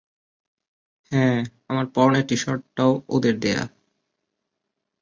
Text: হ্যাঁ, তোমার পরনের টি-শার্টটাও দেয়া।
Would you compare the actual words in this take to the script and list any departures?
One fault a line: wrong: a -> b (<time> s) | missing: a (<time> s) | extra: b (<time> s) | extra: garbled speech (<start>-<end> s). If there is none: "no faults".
wrong: তোমার -> আমার (1.7 s)
extra: ওদের (3.1 s)